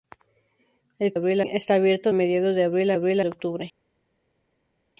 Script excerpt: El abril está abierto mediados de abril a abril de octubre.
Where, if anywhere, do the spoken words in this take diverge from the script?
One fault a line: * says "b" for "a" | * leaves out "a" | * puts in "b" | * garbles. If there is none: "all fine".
all fine